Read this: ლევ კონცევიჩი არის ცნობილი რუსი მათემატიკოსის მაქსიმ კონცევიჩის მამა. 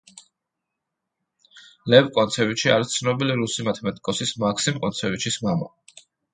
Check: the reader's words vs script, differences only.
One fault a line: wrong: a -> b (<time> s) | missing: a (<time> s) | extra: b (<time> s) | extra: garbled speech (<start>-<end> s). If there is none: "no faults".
no faults